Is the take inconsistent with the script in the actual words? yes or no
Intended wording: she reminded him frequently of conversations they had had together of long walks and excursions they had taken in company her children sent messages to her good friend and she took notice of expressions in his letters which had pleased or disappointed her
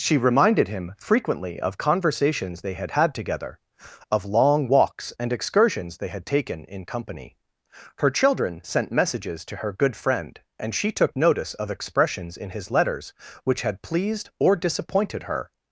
no